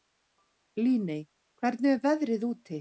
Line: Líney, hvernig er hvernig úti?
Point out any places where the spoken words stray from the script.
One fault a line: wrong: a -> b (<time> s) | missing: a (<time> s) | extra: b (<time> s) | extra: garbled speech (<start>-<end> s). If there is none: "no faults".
wrong: hvernig -> veðrið (2.1 s)